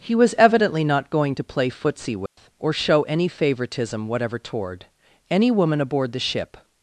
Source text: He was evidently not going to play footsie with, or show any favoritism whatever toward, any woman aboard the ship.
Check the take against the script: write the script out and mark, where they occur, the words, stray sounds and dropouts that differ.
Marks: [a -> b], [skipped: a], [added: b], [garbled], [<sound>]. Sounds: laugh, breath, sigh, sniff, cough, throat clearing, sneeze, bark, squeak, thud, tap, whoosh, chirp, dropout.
He was evidently not going to play footsie with, [dropout] or show any favoritism whatever toward, any woman aboard the ship.